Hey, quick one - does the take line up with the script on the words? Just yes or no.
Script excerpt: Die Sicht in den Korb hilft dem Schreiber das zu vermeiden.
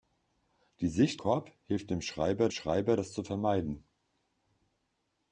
no